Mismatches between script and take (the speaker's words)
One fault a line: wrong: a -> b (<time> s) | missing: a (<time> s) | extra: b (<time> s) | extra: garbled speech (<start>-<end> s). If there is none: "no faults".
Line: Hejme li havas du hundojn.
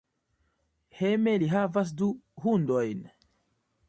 no faults